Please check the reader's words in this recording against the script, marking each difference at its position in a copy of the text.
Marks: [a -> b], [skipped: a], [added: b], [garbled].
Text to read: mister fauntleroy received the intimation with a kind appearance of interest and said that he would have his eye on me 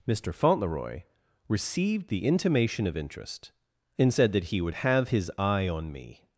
mister fauntleroy received the intimation [skipped: with a kind appearance] of interest and said that he would have his eye on me